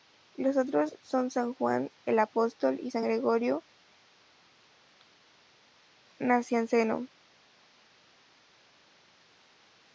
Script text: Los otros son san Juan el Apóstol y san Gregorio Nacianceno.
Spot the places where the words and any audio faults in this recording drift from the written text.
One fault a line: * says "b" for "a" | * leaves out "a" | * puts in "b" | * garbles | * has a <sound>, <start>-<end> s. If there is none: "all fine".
all fine